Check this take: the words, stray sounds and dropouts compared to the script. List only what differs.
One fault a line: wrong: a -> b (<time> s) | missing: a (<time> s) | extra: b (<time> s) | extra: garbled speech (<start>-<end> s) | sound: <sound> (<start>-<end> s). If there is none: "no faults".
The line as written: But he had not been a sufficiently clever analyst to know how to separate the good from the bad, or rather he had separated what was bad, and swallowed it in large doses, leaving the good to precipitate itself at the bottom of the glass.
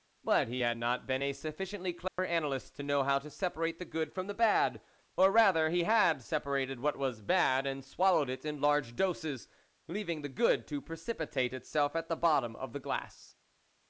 sound: dropout (2.1-2.2 s)